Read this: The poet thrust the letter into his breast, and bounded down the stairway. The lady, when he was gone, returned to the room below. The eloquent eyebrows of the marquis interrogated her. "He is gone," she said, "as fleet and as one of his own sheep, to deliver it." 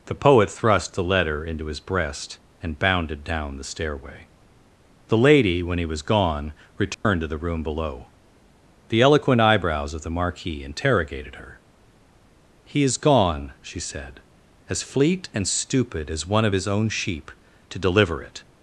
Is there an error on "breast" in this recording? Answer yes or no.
no